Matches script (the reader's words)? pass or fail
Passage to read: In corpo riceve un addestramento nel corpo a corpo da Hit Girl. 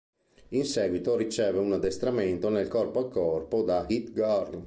fail